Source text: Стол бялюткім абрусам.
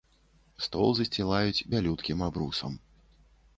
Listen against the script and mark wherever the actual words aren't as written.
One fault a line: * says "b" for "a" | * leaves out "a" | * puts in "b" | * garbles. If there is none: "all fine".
* puts in "засцілаюць"